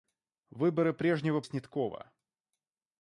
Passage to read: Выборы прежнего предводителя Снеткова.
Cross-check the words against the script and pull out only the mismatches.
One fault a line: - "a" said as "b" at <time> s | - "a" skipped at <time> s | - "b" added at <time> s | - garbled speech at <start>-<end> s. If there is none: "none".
- "предводителя" skipped at 1.4 s